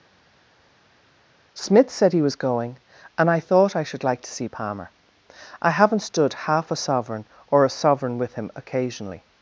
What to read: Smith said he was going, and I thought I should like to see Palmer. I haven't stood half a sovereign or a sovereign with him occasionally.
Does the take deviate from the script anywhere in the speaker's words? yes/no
no